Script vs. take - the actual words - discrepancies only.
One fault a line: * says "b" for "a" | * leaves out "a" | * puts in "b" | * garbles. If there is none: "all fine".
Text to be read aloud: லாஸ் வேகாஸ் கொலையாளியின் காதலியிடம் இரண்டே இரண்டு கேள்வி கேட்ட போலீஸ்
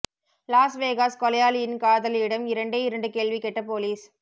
all fine